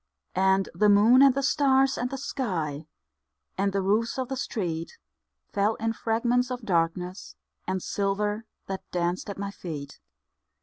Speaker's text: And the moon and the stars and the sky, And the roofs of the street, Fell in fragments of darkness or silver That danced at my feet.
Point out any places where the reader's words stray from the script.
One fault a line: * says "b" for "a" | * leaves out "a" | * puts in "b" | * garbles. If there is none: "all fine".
* says "and" for "or"